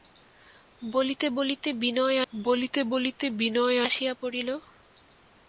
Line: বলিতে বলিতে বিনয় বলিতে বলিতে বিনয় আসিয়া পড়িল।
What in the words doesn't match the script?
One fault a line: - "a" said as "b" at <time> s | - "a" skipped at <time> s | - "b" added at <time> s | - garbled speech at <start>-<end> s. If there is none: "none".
none